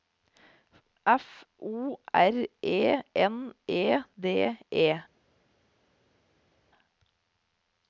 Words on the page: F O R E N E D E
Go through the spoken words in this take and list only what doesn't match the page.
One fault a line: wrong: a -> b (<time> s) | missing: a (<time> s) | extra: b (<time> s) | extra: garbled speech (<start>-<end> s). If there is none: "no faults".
no faults